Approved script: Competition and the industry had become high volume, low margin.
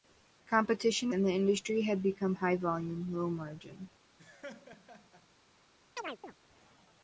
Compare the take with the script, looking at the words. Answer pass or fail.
pass